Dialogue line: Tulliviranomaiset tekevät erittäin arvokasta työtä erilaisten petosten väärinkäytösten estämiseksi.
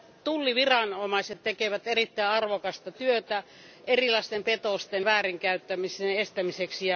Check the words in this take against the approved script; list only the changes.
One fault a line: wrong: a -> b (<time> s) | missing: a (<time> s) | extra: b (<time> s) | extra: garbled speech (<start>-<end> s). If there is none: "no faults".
no faults